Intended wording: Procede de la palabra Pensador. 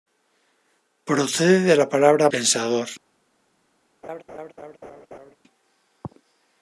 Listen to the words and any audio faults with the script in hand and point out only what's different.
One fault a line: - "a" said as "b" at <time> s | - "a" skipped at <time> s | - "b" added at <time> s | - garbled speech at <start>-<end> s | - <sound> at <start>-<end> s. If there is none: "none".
- laugh at 4.0-5.4 s